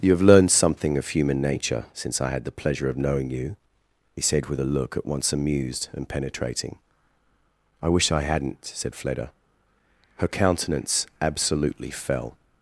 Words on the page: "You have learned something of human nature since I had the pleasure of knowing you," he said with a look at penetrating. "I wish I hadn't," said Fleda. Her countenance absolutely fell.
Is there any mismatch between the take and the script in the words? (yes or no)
yes